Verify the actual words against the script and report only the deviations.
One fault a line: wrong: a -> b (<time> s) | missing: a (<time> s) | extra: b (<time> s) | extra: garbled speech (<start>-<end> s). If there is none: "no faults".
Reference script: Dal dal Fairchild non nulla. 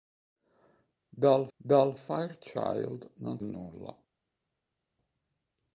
no faults